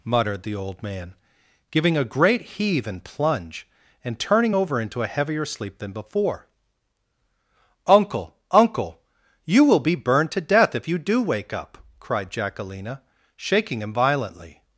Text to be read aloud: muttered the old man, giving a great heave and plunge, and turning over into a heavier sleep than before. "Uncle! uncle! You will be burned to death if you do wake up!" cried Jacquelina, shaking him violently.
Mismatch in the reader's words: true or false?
false